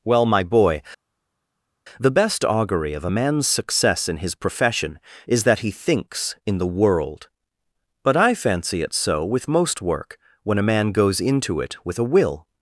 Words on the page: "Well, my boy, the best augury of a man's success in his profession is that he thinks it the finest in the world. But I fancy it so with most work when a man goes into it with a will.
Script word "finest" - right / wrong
wrong